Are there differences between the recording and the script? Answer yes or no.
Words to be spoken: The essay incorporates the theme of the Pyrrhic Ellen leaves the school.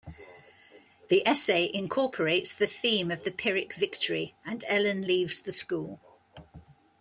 yes